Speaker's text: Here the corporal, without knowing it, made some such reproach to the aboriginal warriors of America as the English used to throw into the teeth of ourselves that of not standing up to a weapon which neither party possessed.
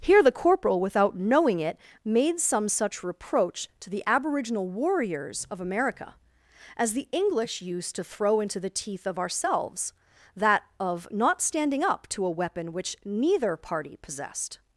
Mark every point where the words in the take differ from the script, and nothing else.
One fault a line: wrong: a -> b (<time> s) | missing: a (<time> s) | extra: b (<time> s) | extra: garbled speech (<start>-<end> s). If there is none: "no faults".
no faults